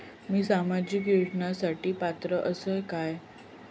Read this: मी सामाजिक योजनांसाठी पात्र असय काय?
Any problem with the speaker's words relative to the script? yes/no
no